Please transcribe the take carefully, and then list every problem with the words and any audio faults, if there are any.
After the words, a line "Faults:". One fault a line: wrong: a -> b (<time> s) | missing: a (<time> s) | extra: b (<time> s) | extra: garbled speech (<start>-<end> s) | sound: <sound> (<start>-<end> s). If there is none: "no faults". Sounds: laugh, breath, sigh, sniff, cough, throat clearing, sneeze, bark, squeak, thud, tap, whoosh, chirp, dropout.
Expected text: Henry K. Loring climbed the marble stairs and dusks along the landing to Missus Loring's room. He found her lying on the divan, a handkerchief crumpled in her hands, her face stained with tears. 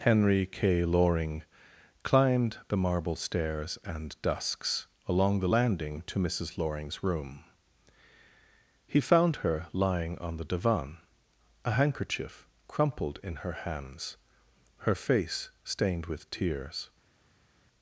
Henry K. Loring climbed the marble stairs and dusks along the landing to Missus Loring's room. He found her lying on the divan, a handkerchief crumpled in her hands, her face stained with tears.
Faults:
no faults